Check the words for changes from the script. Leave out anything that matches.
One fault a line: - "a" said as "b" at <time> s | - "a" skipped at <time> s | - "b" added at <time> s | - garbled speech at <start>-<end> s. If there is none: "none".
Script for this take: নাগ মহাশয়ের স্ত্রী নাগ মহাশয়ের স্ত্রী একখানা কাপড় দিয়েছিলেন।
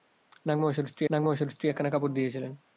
none